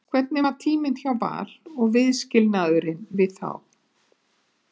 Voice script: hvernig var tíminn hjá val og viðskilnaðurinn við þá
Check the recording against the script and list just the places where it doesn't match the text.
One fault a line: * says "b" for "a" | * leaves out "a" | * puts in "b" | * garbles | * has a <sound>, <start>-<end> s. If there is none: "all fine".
all fine